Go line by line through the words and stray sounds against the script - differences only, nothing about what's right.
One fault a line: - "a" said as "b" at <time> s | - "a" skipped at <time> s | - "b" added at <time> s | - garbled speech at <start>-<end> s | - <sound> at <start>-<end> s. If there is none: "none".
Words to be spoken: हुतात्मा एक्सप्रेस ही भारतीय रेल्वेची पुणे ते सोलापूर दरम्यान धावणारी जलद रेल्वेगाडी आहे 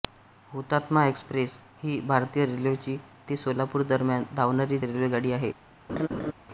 - "पुणे" skipped at 3.0 s
- "जलद" skipped at 4.8 s
- laugh at 5.9-6.3 s